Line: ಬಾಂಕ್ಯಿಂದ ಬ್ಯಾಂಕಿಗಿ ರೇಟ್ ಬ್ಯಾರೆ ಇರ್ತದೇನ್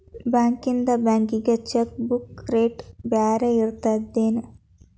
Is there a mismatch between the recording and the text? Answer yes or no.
yes